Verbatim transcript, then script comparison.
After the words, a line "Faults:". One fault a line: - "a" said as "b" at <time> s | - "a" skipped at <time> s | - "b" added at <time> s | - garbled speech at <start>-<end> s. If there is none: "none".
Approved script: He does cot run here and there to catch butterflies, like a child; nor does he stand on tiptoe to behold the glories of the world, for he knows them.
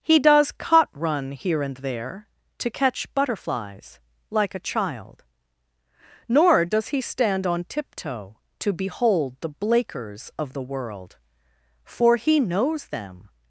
He does cot run here and there to catch butterflies, like a child; nor does he stand on tiptoe to behold the blakers of the world, for he knows them.
Faults:
- "glories" said as "blakers" at 9.5 s